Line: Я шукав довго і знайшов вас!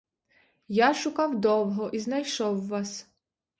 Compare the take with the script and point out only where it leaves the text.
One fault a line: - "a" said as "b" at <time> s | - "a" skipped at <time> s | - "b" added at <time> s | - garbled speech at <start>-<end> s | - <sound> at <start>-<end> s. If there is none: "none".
none